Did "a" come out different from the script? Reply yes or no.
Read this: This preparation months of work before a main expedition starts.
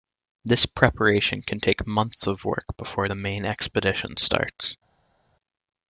yes